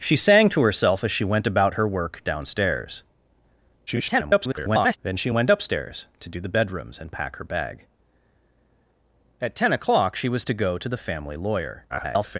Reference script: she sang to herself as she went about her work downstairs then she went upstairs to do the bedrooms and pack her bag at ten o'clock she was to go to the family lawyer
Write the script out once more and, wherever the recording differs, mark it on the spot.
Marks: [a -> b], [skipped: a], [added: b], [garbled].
she sang to herself as she went about her work downstairs [garbled] then she went upstairs to do the bedrooms and pack her bag at ten o'clock she was to go to the family lawyer [garbled]